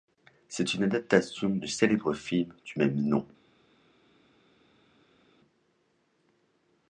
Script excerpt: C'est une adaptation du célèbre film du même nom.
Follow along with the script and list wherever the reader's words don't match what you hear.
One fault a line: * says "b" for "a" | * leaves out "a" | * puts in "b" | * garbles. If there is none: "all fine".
all fine